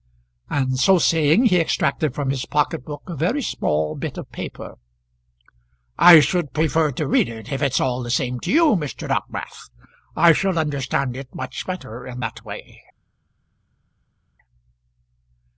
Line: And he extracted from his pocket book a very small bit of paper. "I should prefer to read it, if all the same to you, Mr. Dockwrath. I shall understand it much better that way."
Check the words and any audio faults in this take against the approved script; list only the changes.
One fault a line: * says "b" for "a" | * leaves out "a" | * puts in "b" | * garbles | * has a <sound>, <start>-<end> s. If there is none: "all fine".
* puts in "so saying"
* puts in "it's"
* puts in "in"